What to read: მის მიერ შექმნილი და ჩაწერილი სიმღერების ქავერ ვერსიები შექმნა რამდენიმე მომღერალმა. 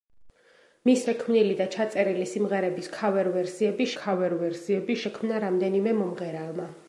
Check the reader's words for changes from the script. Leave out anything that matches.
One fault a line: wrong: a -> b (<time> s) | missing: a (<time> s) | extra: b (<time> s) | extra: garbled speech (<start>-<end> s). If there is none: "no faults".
missing: მიერ (1.0 s)
extra: ქავერ ვერსიები (4.0 s)